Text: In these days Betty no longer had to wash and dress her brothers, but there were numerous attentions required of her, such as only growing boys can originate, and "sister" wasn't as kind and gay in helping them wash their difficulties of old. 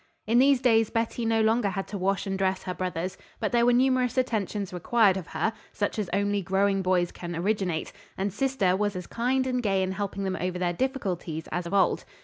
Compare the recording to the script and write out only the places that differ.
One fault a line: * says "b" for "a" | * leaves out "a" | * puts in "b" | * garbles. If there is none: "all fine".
* says "was" for "wasn't"
* says "over" for "wash"
* puts in "as"